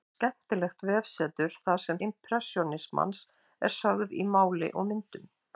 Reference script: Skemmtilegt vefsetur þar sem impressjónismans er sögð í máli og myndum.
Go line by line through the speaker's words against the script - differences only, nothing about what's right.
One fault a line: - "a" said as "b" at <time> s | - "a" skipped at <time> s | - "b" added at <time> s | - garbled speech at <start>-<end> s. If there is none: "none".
none